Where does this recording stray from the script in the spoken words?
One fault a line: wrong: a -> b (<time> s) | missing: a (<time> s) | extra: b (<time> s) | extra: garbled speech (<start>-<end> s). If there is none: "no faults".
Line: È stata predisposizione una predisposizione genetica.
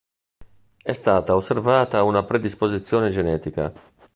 wrong: predisposizione -> osservata (1.4 s)